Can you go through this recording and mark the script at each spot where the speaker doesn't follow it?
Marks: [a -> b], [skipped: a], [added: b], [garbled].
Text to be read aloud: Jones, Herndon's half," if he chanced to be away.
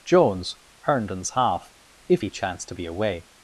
Jones, Herndon's half," if he chanced to be away.